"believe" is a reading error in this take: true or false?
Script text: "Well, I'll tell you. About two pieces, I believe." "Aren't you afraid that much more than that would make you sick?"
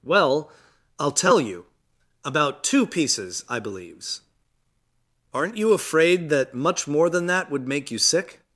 true